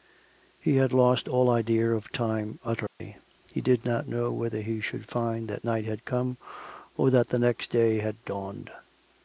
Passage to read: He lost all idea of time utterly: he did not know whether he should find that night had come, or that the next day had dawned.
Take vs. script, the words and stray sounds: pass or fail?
fail